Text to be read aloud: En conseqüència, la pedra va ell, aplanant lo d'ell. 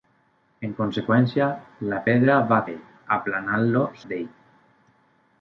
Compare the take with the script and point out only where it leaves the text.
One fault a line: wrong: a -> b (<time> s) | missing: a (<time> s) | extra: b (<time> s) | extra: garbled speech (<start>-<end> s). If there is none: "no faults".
no faults